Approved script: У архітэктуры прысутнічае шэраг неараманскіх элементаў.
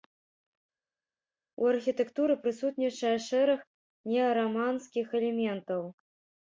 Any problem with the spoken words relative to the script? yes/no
no